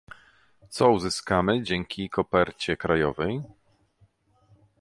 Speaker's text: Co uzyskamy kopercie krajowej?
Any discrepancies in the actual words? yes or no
yes